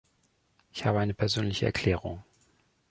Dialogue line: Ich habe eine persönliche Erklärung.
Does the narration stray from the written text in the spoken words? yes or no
no